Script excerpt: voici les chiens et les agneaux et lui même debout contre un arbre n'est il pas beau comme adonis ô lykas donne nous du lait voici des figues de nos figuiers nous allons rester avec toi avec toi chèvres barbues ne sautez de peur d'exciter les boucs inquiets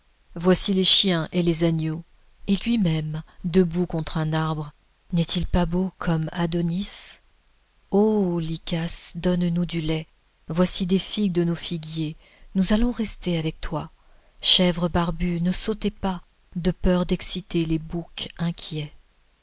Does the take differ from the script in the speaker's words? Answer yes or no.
yes